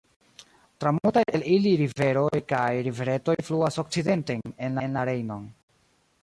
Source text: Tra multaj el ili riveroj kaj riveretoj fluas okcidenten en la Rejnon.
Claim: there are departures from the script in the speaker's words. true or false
true